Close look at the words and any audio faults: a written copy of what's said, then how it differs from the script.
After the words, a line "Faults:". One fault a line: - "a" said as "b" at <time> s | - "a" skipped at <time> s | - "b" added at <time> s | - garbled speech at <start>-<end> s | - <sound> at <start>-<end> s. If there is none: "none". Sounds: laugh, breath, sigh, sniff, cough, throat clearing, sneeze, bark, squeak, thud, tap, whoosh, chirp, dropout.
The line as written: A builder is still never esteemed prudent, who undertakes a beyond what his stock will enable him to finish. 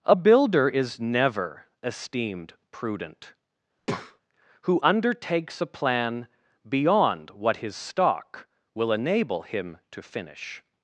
A builder is never esteemed prudent, who undertakes a plan beyond what his stock will enable him to finish.
Faults:
- "still" skipped at 1.0 s
- breath at 3.8-4.2 s
- "plan" added at 5.7 s